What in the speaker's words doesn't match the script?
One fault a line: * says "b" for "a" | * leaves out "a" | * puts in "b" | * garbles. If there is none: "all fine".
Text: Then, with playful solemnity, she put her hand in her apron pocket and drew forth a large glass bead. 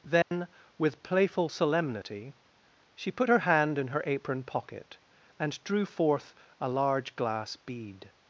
all fine